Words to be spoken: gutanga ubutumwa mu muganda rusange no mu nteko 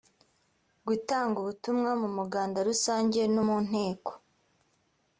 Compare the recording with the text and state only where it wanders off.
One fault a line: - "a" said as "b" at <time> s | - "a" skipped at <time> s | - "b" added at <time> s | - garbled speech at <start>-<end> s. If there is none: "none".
none